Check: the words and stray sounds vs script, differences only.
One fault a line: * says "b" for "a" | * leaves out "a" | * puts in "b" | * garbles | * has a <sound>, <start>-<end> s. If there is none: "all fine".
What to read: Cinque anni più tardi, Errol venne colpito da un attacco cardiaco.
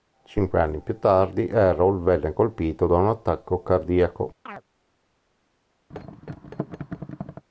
* has a chirp, 4.5-4.6 s
* has a thud, 5.9-7.4 s